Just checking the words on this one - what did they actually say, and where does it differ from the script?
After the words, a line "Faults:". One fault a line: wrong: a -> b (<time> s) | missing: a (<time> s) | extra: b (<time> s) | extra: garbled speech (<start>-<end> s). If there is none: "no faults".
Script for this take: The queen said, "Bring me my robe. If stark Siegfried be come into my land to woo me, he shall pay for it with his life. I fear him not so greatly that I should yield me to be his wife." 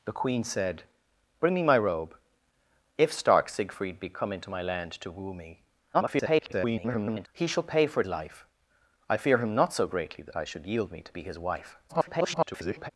The queen said, "Bring me my robe. If stark Siegfried be come into my land to woo me, [garbled] he shall pay for it life. I fear him not so greatly that I should yield me to be his wife." [garbled]
Faults:
extra: garbled speech (5.9-7.3 s)
missing: with his (8.1 s)
extra: garbled speech (11.9-12.9 s)